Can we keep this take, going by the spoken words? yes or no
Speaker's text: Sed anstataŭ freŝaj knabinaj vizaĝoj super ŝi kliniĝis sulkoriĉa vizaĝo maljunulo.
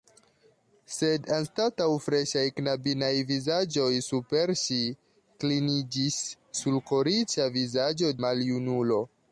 yes